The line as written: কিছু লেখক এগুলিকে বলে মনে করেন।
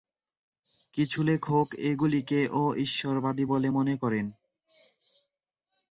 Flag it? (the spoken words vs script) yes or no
yes